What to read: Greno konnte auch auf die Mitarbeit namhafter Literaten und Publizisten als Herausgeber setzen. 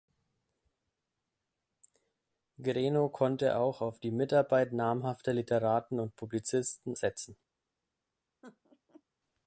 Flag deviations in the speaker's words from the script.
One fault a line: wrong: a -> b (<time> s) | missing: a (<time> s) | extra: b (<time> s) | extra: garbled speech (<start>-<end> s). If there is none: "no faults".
missing: als Herausgeber (7.0 s)